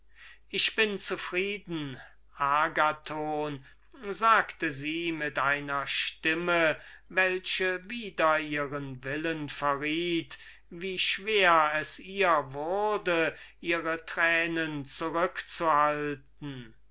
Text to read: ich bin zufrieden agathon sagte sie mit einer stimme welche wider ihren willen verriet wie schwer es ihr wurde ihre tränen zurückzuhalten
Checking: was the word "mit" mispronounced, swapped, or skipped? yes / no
no